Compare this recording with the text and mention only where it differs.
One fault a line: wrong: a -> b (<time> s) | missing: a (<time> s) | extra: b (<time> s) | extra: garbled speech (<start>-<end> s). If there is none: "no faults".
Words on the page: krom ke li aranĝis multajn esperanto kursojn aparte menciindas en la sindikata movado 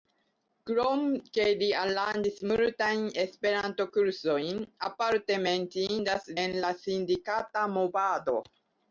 no faults